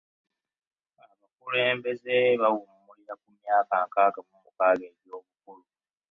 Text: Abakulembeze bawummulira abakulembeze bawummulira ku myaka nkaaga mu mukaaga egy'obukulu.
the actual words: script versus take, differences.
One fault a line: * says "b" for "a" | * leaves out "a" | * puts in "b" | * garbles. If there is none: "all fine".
* leaves out "abakulembeze bawummulira"